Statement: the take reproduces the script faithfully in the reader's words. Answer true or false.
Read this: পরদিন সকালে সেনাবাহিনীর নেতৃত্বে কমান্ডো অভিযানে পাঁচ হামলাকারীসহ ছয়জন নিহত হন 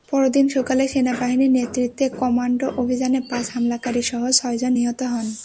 true